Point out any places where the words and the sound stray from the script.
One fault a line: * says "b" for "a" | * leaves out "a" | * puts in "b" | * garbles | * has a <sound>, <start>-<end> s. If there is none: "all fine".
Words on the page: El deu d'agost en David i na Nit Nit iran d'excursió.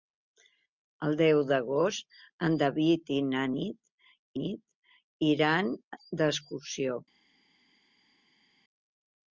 all fine